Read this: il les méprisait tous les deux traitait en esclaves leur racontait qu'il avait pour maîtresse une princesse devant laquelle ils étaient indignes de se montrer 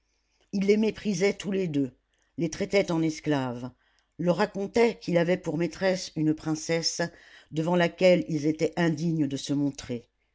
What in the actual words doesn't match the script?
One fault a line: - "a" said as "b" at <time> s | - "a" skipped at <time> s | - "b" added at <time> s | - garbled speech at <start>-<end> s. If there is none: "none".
- "les" added at 2.4 s